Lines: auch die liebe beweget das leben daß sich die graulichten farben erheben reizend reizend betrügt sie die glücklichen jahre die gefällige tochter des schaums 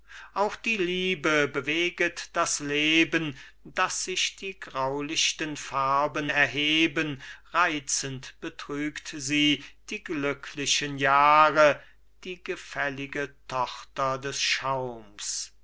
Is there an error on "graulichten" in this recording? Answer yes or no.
no